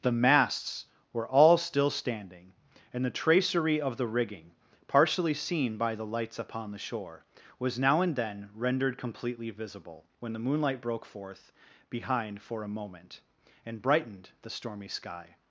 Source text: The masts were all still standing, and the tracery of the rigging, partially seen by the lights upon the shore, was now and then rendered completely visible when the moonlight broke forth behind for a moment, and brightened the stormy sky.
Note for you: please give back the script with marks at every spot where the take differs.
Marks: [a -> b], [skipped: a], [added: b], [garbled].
The masts were all still standing, and the tracery of the rigging, partially seen by the lights upon the shore, was now and then rendered completely visible when the moonlight broke forth behind for a moment, and brightened the stormy sky.